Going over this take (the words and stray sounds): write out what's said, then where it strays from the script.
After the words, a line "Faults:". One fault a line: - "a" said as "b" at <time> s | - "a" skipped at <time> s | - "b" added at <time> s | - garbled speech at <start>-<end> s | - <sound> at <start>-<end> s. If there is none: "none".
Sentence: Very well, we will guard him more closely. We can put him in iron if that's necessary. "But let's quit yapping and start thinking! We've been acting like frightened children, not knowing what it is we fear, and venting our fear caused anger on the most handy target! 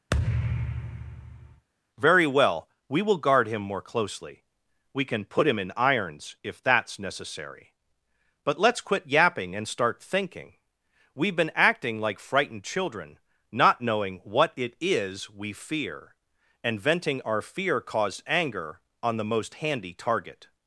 Very well, we will guard him more closely. We can put him in irons if that's necessary. "But let's quit yapping and start thinking! We've been acting like frightened children, not knowing what it is we fear, and venting our fear caused anger on the most handy target!
Faults:
- thud at 0.1-1.7 s
- "iron" said as "irons" at 5.8 s